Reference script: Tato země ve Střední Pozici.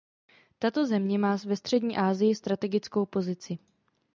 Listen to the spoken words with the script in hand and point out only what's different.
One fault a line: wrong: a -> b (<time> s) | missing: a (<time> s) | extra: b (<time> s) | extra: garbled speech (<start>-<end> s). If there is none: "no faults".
extra: má (1.2 s)
extra: Asii strategickou (2.0 s)